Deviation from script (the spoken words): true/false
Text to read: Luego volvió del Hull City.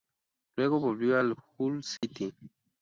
true